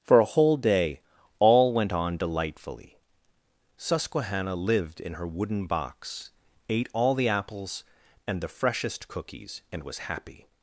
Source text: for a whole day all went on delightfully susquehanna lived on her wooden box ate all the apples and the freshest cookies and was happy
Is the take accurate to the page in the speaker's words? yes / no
no